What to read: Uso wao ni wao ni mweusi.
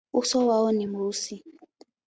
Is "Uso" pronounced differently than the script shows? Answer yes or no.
no